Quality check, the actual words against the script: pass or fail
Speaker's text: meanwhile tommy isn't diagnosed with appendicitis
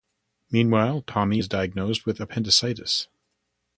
fail